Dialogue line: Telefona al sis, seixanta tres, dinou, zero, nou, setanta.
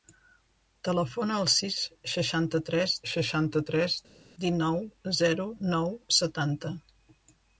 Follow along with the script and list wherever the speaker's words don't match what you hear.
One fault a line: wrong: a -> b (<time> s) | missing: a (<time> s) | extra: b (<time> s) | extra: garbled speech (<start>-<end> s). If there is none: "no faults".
extra: seixanta tres (3.1 s)